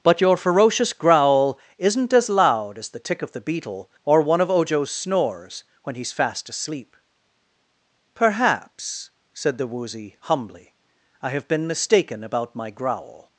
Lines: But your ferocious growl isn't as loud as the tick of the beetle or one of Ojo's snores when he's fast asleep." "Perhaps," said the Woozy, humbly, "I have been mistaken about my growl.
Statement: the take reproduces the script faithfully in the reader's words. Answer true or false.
true